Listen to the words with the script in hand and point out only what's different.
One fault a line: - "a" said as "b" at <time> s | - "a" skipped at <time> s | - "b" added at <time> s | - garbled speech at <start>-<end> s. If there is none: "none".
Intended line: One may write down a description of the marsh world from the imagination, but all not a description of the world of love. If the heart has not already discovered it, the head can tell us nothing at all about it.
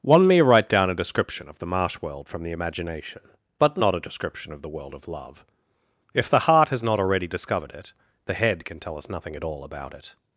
- "all" skipped at 3.8 s